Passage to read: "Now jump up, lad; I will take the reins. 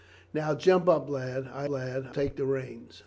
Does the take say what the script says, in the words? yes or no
no